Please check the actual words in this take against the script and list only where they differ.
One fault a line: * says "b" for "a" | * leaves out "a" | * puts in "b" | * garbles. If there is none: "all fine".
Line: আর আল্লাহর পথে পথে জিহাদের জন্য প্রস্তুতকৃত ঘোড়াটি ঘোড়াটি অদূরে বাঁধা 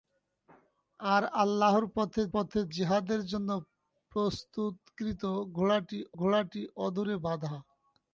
all fine